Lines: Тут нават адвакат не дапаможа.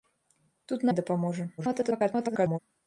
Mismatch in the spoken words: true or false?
true